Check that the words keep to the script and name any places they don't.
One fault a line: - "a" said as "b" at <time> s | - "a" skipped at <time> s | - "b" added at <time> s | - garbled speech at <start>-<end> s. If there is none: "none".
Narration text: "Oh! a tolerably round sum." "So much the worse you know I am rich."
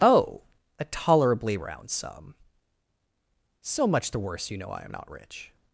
- "not" added at 4.9 s